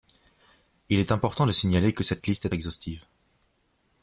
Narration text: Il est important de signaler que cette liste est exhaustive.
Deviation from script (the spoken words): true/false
false